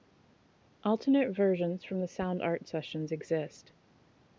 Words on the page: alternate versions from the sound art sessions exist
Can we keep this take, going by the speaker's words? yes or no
yes